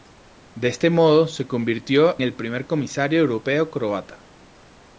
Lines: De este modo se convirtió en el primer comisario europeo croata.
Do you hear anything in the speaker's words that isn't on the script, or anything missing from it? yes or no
yes